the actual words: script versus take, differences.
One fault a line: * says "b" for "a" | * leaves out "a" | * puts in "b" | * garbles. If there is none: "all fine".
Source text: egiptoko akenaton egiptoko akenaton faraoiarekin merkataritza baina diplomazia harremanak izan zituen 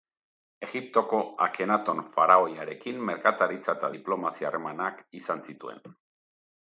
* leaves out "egiptoko akenaton"
* says "eta" for "baina"